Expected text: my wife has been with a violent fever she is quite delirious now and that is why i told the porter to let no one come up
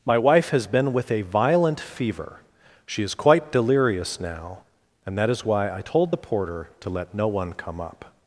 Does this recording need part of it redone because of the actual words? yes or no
no